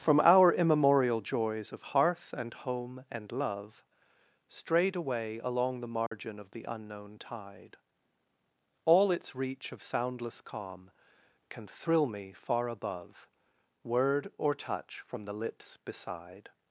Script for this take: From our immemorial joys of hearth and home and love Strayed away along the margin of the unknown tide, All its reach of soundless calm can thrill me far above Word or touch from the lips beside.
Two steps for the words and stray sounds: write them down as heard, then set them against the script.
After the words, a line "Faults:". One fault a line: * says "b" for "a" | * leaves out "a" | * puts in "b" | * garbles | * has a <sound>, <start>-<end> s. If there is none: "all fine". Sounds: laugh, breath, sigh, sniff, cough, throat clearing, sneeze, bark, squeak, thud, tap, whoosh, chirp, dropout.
From our immemorial joys of hearth and home and love Strayed away along the margin of the unknown tide, All its reach of soundless calm can thrill me far above Word or touch from the lips beside.
Faults:
* has a dropout, 6.1-6.1 s